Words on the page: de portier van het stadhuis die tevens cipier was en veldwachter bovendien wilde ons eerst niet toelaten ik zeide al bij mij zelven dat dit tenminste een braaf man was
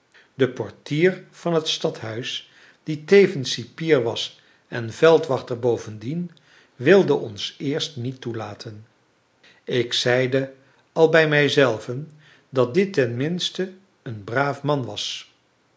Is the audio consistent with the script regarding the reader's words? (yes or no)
yes